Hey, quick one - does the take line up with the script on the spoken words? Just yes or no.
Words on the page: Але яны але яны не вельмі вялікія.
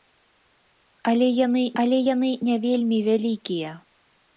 yes